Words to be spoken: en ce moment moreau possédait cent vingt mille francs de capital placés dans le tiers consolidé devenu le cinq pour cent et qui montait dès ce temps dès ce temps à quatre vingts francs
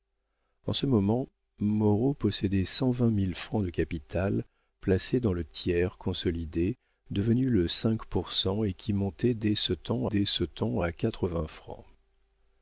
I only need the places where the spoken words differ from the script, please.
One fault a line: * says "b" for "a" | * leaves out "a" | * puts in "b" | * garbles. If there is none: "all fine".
all fine